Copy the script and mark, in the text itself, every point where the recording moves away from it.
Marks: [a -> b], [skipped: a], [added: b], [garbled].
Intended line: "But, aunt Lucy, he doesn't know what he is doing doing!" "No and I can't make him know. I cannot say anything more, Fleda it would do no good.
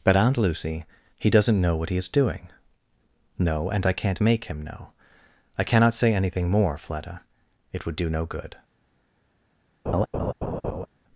"But, aunt Lucy, he doesn't know what he is doing [skipped: doing!"] "No and I can't make him know. I cannot say anything more, Fleda it would do no good.